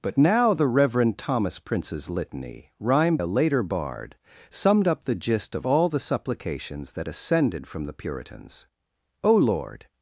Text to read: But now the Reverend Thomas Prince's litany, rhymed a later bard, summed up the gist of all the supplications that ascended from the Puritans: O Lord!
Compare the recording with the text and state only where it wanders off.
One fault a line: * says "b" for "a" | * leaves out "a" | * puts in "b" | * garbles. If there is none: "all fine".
all fine